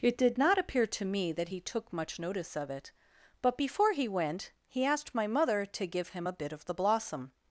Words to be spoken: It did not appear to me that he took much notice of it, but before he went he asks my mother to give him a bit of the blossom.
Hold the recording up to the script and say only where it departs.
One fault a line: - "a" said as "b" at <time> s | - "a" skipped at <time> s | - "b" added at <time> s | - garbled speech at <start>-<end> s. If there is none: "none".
- "asks" said as "asked" at 4.8 s